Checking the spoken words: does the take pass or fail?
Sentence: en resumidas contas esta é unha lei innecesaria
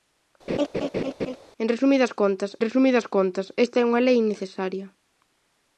fail